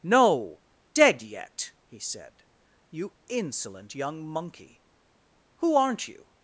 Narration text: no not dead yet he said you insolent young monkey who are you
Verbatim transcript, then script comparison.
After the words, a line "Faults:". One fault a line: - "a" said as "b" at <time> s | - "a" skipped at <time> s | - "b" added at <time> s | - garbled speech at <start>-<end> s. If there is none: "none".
no dead yet he said you insolent young monkey who aren't you
Faults:
- "not" skipped at 0.6 s
- "are" said as "aren't" at 5.7 s